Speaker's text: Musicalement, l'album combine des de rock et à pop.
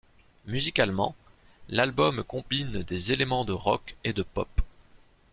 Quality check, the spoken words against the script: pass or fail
fail